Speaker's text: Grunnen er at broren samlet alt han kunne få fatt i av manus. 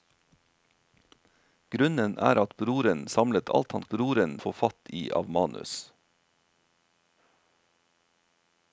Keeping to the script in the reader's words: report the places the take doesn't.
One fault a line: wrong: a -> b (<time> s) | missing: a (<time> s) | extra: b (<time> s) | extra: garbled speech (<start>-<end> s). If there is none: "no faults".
wrong: kunne -> broren (3.9 s)